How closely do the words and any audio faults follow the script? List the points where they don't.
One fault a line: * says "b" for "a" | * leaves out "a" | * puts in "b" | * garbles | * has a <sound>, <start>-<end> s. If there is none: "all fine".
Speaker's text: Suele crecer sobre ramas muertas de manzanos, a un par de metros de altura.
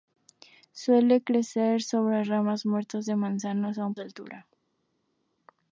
* leaves out "par de metros"